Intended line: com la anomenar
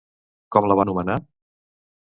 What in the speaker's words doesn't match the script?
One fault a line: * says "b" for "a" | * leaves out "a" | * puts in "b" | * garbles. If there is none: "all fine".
all fine